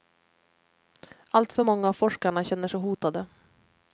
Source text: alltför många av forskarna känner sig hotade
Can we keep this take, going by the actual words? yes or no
yes